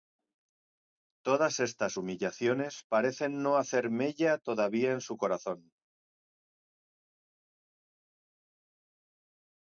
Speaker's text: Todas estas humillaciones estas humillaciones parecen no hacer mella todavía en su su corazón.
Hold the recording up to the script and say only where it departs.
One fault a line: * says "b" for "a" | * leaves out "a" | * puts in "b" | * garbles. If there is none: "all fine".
* leaves out "estas humillaciones"
* leaves out "su"